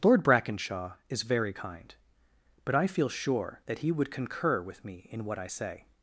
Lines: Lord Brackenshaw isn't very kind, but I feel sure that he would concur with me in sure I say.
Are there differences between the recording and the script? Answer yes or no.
yes